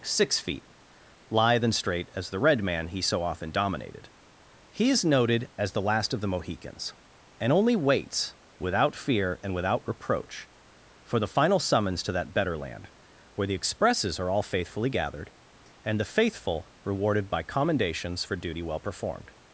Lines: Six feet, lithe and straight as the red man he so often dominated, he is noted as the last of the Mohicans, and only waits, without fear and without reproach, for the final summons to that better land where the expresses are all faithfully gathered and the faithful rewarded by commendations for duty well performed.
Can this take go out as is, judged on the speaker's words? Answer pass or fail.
pass